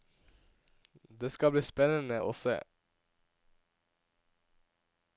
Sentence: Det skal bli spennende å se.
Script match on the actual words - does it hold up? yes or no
yes